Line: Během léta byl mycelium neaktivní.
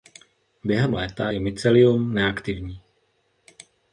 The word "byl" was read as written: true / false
false